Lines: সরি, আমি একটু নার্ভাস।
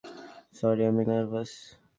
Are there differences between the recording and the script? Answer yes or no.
yes